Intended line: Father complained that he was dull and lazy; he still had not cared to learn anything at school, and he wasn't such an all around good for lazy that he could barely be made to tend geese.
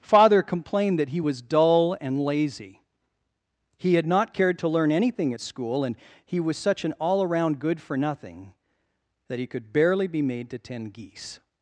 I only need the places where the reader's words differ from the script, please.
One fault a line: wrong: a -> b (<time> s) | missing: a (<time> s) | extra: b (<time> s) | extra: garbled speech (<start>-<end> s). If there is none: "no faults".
missing: still (3.9 s)
wrong: wasn't -> was (6.4 s)
wrong: lazy -> nothing (8.0 s)